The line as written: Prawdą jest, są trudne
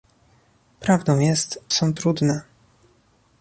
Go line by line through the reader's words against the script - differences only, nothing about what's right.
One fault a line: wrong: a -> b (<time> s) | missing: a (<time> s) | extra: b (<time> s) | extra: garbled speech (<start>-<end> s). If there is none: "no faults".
no faults